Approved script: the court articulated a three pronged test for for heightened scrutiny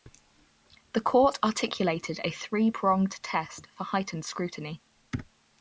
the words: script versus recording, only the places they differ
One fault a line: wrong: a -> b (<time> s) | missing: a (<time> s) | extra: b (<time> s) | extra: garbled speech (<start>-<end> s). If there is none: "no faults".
missing: for (3.8 s)